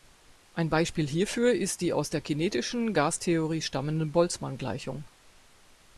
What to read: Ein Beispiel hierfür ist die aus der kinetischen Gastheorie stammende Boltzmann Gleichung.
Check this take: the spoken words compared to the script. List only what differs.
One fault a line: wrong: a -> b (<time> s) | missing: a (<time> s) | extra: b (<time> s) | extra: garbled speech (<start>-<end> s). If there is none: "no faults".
no faults